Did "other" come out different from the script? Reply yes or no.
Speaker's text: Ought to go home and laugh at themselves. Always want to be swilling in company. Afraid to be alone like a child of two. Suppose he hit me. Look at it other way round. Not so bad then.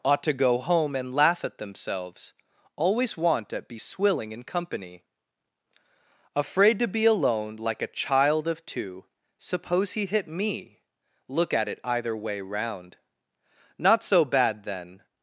yes